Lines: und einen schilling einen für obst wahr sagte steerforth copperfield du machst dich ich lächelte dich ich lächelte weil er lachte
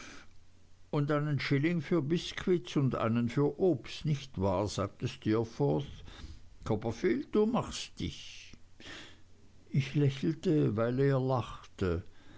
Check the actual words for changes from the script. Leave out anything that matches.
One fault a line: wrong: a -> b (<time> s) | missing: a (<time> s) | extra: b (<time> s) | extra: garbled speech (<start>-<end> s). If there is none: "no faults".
extra: für biskuits und (1.8 s)
extra: nicht (4.1 s)
missing: dich ich lächelte (10.8 s)